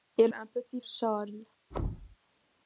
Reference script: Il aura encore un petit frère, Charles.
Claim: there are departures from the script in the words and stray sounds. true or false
true